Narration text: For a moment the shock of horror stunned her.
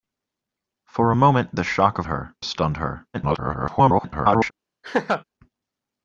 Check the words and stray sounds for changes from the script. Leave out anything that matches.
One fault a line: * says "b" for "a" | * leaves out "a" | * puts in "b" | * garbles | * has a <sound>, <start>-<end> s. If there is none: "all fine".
* says "her" for "horror"
* garbles
* has a laugh, 4.8-5.2 s